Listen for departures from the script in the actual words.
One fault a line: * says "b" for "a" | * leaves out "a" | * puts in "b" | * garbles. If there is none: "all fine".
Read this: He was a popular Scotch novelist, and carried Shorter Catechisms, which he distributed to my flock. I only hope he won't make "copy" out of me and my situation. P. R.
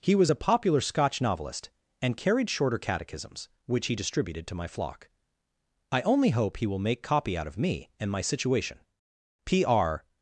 * says "will" for "won't"